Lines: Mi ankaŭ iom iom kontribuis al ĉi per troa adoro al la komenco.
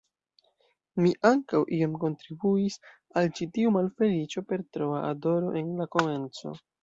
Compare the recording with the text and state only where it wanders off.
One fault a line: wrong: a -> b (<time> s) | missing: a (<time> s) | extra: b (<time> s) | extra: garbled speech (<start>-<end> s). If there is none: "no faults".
missing: iom (2.0 s)
extra: tiu malfeliĉo (3.6 s)
wrong: al -> en (5.6 s)